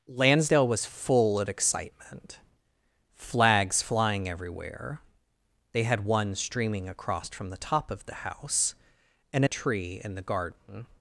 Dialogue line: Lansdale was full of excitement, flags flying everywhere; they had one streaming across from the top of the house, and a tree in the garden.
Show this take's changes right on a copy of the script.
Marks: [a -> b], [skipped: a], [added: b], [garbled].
Lansdale was full of excitement, flags flying everywhere; they had one streaming across from the top of the house, and a tree in the garden.